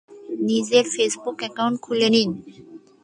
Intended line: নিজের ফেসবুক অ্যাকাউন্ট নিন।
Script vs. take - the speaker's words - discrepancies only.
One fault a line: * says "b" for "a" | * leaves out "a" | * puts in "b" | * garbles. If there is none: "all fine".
* puts in "খুলে"